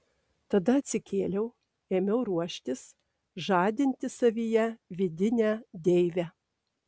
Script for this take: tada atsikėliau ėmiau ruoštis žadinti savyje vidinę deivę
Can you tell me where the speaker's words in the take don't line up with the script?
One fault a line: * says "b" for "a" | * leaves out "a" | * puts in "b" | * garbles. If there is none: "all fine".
all fine